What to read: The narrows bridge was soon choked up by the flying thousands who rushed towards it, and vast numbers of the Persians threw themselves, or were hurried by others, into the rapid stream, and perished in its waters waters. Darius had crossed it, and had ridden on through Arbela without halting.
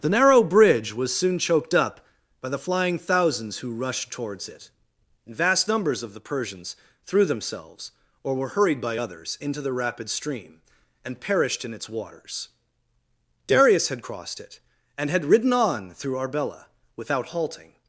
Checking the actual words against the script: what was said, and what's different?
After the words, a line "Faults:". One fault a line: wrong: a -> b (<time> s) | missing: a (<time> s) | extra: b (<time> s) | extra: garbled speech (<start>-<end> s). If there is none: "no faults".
The narrow bridge was soon choked up by the flying thousands who rushed towards it, and vast numbers of the Persians threw themselves, or were hurried by others, into the rapid stream, and perished in its waters. Darius had crossed it, and had ridden on through Arbela without halting.
Faults:
wrong: narrows -> narrow (0.1 s)
missing: waters (12.5 s)